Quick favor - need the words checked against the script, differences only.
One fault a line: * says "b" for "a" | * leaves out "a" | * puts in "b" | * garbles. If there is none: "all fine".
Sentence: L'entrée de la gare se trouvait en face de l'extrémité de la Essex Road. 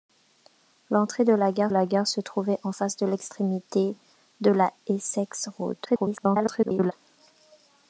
* puts in "la gare"
* garbles